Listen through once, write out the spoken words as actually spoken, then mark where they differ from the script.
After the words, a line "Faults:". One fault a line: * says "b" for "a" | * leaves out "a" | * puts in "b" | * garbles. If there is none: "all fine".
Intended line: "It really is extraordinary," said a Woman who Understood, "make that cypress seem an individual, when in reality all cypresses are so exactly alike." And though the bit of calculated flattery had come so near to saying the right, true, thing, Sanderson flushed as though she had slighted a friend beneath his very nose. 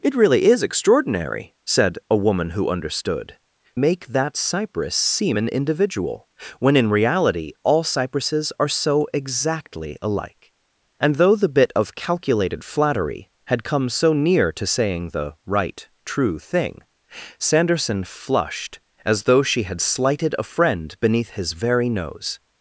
"It really is extraordinary," said a Woman who Understood, "make that cypress seem an individual, when in reality all cypresses are so exactly alike." And though the bit of calculated flattery had come so near to saying the right, true, thing, Sanderson flushed as though she had slighted a friend beneath his very nose.
Faults:
all fine